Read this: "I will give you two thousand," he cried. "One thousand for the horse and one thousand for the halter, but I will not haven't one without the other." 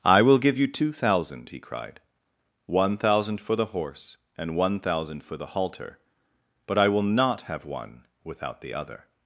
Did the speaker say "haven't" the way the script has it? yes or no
no